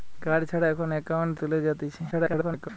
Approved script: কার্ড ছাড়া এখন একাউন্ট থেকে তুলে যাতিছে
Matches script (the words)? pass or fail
fail